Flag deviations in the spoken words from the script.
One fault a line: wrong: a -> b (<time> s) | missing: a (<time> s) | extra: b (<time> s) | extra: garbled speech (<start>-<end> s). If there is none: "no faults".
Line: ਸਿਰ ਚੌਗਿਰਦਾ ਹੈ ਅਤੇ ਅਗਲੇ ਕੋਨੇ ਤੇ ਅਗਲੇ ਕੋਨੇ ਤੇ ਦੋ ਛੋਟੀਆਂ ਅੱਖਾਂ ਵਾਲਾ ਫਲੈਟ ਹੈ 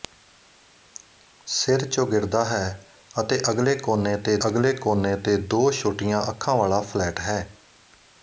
no faults